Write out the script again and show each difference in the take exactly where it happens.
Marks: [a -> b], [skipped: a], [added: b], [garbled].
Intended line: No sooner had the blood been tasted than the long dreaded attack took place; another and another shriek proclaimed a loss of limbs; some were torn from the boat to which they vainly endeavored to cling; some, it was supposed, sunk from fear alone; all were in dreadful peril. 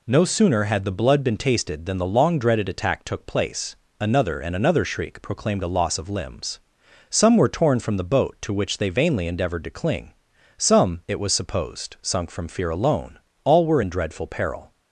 No sooner had the blood been tasted than the long dreaded attack took place; another and another shriek proclaimed a loss of limbs; some were torn from the boat to which they vainly endeavored to cling; some, it was supposed, sunk from fear alone; all were in dreadful peril.